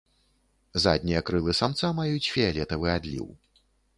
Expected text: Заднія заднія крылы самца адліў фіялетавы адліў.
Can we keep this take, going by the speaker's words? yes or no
no